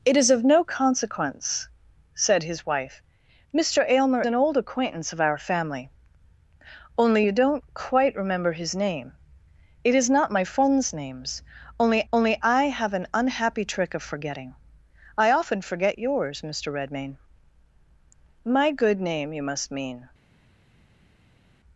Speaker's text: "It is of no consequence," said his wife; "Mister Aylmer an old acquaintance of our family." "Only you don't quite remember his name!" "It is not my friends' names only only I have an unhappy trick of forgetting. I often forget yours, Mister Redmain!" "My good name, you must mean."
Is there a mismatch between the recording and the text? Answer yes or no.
no